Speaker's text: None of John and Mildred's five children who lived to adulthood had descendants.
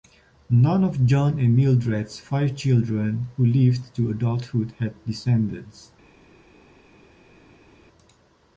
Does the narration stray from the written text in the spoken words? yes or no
no